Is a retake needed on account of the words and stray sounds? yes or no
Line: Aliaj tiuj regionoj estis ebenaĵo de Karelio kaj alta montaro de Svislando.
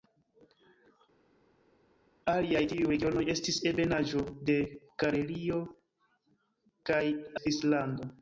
yes